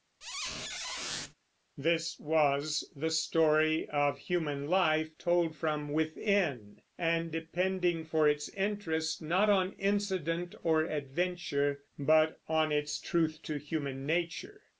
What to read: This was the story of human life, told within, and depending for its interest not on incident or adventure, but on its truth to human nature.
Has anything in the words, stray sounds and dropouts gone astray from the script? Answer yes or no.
yes